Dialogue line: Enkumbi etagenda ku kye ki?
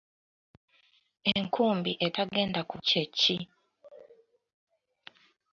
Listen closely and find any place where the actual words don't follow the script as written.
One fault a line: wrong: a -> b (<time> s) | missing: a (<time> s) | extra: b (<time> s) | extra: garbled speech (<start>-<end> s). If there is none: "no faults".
no faults